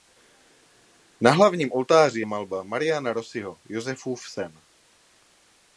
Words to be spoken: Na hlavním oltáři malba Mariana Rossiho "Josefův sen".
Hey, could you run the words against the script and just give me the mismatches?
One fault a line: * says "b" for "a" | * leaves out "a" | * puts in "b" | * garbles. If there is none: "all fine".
all fine